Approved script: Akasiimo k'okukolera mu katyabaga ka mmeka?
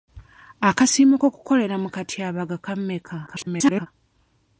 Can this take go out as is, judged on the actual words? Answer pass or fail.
fail